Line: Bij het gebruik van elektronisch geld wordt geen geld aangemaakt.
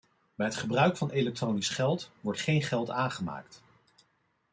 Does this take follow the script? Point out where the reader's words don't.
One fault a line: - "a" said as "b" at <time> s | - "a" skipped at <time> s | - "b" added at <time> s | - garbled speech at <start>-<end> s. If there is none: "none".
none